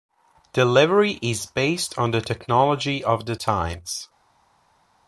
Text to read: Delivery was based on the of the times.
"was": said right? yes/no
no